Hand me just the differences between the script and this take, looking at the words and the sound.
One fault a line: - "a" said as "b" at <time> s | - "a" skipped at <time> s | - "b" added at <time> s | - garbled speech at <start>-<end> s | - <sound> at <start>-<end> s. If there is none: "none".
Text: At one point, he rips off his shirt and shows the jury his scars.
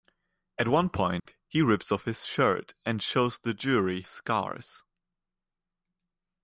- dropout at 1.2-1.3 s
- "his" skipped at 4.0 s